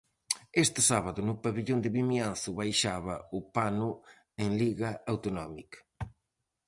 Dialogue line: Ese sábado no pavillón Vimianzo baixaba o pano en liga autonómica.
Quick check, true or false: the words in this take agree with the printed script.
false